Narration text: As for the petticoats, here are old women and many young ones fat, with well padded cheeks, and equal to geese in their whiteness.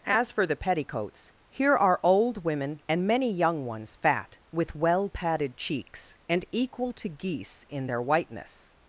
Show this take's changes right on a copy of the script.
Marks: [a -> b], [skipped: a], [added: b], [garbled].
As for the petticoats, here are old women and many young ones fat, with well padded cheeks, and equal to geese in their whiteness.